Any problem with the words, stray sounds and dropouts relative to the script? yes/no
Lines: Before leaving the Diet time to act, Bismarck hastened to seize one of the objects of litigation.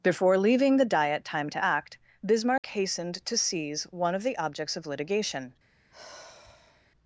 yes